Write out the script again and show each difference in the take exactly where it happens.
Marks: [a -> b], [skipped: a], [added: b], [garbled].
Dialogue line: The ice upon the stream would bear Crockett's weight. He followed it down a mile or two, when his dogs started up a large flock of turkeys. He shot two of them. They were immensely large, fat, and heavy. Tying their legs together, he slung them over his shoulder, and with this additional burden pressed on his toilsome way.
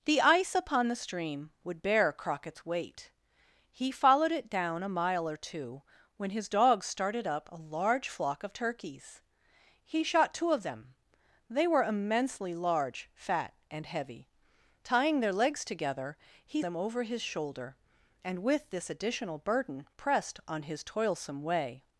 The ice upon the stream would bear Crockett's weight. He followed it down a mile or two, when his dogs started up a large flock of turkeys. He shot two of them. They were immensely large, fat, and heavy. Tying their legs together, he [skipped: slung] them over his shoulder, and with this additional burden pressed on his toilsome way.